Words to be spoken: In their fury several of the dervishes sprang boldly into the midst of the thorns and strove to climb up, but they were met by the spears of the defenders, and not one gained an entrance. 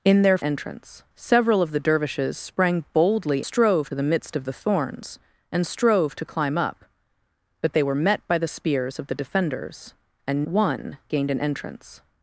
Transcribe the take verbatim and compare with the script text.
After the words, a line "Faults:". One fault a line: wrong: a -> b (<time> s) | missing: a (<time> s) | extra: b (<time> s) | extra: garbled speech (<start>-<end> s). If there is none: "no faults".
In their entrance several of the dervishes sprang boldly strove the midst of the thorns and strove to climb up, but they were met by the spears of the defenders, and one gained an entrance.
Faults:
wrong: fury -> entrance (0.4 s)
wrong: into -> strove (3.4 s)
missing: not (10.5 s)